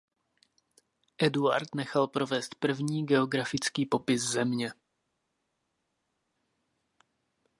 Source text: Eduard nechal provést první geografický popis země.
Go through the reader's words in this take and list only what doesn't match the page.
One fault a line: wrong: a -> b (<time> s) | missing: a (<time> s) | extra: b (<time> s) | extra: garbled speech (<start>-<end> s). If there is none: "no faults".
no faults